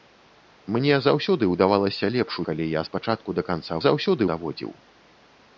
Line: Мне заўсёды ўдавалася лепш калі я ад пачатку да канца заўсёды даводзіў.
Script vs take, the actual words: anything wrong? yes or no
no